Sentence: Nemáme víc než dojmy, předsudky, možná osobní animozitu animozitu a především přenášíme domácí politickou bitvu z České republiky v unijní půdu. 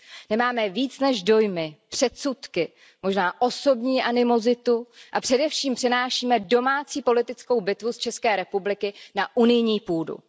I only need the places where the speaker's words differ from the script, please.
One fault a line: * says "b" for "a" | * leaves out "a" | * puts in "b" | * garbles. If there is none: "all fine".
* leaves out "animozitu"
* says "na" for "v"